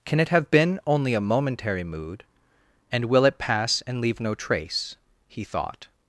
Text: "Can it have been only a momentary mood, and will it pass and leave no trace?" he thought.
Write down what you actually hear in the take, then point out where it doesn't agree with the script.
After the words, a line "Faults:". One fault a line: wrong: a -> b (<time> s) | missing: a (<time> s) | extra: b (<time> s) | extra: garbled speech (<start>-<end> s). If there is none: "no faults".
"Can it have been only a momentary mood, and will it pass and leave no trace?" he thought.
Faults:
no faults